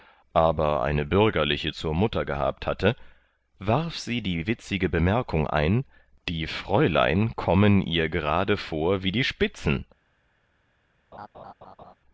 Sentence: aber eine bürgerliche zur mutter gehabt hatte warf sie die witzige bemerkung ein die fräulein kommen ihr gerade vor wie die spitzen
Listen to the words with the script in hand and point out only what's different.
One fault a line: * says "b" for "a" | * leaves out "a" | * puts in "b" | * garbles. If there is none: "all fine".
all fine